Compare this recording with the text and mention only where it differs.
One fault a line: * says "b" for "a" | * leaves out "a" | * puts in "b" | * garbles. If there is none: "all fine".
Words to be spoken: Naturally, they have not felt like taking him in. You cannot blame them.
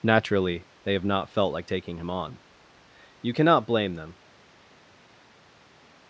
* says "on" for "in"